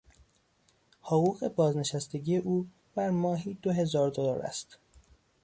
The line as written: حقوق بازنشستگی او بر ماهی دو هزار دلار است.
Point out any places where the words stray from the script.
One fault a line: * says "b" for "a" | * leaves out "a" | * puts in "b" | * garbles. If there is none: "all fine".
all fine